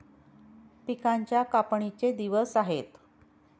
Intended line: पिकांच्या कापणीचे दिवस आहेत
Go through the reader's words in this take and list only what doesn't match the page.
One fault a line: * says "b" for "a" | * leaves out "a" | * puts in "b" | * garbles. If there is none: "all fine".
all fine